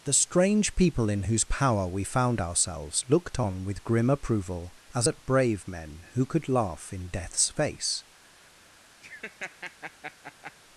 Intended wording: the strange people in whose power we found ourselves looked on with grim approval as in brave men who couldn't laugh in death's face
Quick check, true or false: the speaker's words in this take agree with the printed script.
false